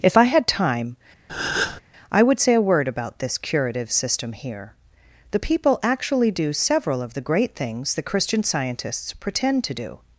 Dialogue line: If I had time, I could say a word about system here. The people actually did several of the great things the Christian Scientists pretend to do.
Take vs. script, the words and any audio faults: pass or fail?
fail